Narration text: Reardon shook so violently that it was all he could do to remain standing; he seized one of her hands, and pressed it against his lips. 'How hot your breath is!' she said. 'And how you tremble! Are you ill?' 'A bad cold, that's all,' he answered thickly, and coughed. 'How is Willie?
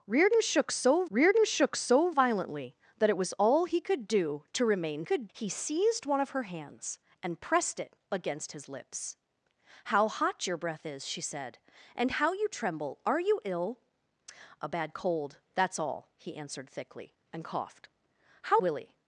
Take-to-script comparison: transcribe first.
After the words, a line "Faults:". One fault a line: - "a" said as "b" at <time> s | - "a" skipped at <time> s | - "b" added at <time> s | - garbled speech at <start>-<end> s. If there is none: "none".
Reardon shook so reardon shook so violently that it was all he could do to remain could; he seized one of her hands, and pressed it against his lips. 'How hot your breath is!' she said. 'And how you tremble! Are you ill?' 'A bad cold, that's all,' he answered thickly, and coughed. 'How Willie?
Faults:
- "reardon shook so" added at 1.1 s
- "standing" said as "could" at 5.0 s
- "is" skipped at 18.6 s